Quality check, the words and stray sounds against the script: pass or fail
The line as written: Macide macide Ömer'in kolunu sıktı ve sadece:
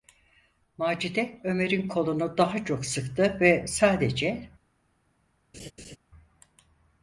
fail